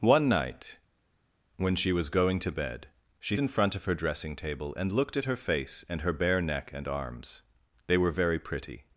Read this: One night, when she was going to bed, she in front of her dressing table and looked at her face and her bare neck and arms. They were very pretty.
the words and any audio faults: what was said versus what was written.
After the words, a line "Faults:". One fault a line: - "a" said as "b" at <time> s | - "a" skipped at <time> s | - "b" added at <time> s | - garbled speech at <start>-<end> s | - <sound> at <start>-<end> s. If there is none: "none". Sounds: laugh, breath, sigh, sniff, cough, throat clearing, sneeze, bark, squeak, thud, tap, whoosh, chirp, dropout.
One night, when she was going to bed, she in front of her dressing table and looked at her face and her bare neck and arms. They were very pretty.
Faults:
none